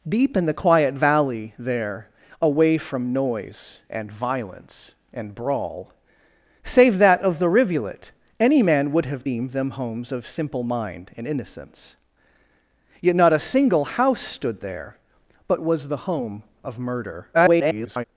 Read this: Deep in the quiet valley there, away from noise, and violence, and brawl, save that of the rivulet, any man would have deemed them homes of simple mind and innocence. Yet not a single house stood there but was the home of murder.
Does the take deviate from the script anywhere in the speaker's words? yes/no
yes